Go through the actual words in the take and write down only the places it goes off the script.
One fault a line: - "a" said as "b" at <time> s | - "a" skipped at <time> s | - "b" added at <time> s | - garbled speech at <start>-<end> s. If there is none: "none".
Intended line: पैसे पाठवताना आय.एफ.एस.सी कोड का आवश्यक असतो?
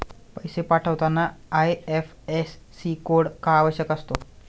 none